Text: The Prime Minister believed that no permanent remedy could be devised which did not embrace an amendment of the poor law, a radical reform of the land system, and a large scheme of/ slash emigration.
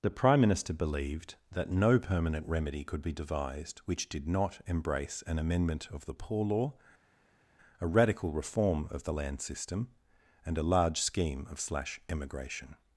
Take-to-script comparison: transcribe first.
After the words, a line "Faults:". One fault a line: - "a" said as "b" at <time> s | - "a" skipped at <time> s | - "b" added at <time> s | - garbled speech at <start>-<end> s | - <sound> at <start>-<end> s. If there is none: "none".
The Prime Minister believed that no permanent remedy could be devised which did not embrace an amendment of the poor law, a radical reform of the land system, and a large scheme of/ slash emigration.
Faults:
none